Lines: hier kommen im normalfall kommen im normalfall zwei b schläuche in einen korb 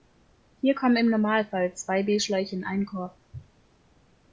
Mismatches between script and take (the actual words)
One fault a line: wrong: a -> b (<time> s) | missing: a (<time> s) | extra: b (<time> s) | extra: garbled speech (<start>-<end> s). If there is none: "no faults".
missing: kommen im normalfall (1.8 s)